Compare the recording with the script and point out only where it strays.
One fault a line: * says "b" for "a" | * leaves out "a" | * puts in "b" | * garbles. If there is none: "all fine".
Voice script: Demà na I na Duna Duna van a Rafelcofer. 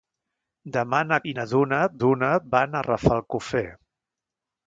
all fine